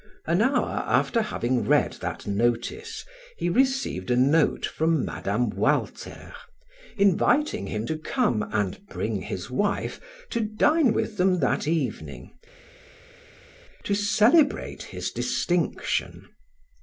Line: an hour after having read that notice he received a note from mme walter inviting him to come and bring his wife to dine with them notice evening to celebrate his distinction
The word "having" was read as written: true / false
true